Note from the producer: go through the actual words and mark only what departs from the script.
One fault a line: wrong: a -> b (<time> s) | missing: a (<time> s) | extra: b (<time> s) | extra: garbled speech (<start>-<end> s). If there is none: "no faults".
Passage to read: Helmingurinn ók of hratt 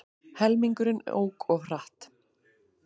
no faults